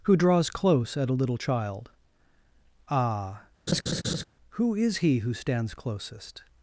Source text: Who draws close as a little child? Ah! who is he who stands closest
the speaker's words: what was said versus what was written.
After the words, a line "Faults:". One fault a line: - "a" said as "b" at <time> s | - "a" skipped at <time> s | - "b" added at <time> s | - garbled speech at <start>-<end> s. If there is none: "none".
Who draws close at a little child? Ah! who is he who stands closest
Faults:
- "as" said as "at" at 1.0 s